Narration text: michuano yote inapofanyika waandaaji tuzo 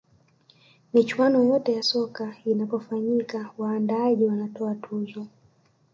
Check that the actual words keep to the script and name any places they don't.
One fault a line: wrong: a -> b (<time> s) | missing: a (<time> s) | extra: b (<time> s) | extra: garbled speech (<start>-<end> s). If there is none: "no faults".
extra: ya soka (1.7 s)
extra: wanatoa (4.2 s)